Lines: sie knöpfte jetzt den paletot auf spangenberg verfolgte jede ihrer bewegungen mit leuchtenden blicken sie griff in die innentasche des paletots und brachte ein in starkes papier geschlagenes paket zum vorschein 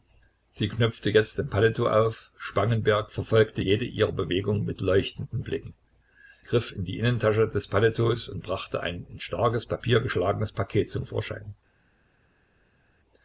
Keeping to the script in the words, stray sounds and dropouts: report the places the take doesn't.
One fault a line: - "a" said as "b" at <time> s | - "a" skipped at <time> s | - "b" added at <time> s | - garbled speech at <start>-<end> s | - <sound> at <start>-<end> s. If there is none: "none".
- "sie" skipped at 5.7 s